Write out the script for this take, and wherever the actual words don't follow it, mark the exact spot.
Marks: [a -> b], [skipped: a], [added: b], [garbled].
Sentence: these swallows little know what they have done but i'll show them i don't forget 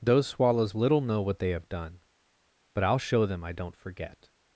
[these -> those] swallows little know what they have done but i'll show them i don't forget